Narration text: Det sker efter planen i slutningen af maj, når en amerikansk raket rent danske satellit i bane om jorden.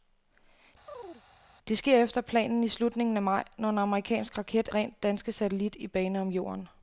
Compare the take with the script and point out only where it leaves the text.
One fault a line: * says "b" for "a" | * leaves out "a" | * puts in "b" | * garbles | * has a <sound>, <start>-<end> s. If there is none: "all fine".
* has a chirp, 0.9-1.2 s